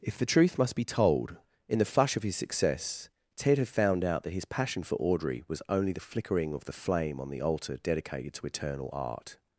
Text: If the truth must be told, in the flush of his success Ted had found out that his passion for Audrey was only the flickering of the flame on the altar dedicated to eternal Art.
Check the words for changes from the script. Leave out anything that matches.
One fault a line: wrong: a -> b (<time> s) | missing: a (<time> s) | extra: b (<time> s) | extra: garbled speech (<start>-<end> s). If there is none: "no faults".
no faults